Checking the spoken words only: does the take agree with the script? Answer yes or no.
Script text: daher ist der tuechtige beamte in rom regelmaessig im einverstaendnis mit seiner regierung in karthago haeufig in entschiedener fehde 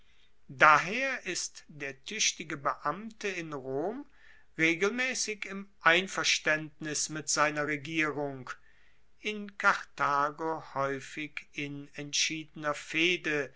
yes